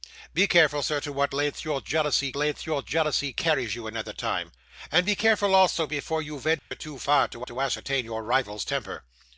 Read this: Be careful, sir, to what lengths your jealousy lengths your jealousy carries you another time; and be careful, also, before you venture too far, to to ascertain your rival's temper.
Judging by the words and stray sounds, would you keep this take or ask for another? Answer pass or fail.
fail